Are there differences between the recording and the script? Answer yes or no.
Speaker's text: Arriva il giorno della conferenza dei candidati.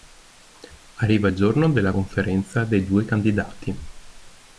yes